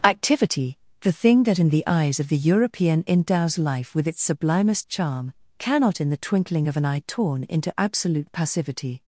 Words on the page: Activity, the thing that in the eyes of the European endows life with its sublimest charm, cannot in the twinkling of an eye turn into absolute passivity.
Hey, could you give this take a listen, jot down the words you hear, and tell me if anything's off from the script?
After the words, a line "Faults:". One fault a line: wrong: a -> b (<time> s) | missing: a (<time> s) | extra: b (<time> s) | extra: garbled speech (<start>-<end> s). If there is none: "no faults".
Activity, the thing that in the eyes of the European endows life with its sublimest charm, cannot in the twinkling of an eye torn into absolute passivity.
Faults:
wrong: turn -> torn (7.0 s)